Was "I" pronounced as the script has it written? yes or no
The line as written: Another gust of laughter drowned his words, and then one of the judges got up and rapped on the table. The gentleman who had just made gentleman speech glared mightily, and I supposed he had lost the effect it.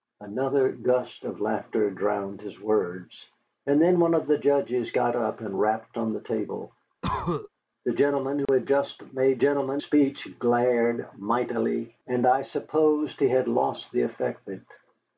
yes